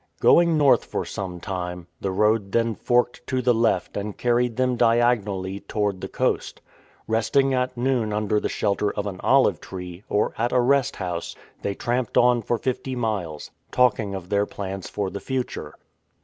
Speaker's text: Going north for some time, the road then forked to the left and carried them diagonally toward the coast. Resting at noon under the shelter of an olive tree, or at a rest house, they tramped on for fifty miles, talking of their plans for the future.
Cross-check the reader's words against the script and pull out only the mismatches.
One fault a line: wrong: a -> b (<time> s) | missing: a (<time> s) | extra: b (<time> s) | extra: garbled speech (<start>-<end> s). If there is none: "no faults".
no faults